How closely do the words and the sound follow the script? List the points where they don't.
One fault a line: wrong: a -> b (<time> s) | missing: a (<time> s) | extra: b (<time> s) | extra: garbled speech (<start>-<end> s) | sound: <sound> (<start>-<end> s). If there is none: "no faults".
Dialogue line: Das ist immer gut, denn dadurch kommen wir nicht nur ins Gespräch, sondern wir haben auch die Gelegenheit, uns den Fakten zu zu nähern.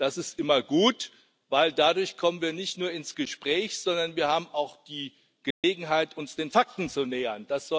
sound: dropout (5.5-5.6 s)
missing: zu (7.0 s)